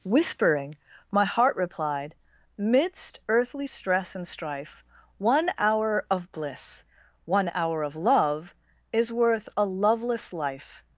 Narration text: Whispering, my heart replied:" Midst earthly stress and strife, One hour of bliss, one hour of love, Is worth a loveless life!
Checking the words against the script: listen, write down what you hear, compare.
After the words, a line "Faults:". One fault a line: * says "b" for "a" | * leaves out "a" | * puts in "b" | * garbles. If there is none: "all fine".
Whispering, my heart replied:" Midst earthly stress and strife, One hour of bliss, one hour of love, Is worth a loveless life!
Faults:
all fine